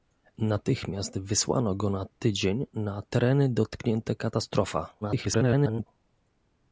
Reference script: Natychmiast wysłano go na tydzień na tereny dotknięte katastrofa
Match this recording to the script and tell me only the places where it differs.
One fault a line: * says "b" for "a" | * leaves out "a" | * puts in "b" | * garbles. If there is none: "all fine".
* garbles